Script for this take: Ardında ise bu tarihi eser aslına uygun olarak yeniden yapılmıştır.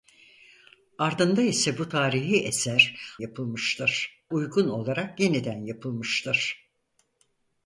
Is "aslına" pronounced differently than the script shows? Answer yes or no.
yes